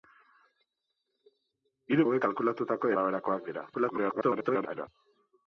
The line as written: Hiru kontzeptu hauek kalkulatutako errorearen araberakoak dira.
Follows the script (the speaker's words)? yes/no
no